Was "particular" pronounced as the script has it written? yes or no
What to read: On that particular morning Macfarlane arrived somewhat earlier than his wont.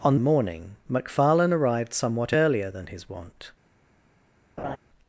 no